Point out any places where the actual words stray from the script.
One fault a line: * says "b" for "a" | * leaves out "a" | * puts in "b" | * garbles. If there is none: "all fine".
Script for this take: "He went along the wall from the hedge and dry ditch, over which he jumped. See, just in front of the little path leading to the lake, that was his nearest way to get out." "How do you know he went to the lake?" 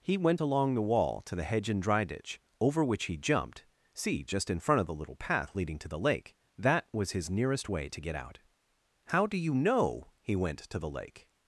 * says "to" for "from"